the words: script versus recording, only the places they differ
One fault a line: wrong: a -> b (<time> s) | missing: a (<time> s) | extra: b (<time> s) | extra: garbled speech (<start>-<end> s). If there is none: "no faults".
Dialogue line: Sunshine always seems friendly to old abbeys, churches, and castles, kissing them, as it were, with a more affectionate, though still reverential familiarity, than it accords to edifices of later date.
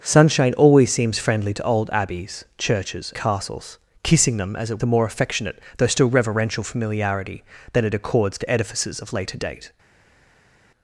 missing: and (3.1 s)
missing: were with (4.8 s)